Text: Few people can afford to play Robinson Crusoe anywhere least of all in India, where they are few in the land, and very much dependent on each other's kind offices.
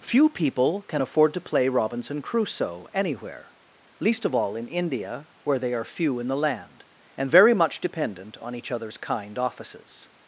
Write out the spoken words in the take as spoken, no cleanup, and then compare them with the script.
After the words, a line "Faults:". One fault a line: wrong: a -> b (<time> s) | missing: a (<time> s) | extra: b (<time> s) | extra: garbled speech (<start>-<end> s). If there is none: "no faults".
Few people can afford to play Robinson Crusoe anywhere least of all in India, where they are few in the land, and very much dependent on each other's kind offices.
Faults:
no faults